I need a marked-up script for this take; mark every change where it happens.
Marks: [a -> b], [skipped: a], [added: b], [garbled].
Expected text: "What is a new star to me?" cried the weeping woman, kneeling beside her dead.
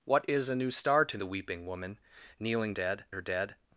"What is a new star to [skipped: me?" cried] the weeping woman, kneeling [beside -> dead] her dead.